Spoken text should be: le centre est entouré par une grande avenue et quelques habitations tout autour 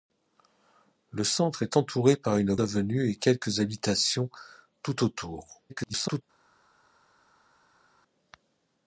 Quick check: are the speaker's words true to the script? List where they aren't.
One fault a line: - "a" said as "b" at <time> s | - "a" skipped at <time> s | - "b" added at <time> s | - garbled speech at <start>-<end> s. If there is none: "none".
- "grande" skipped at 2.5 s
- garbled speech at 5.7-6.2 s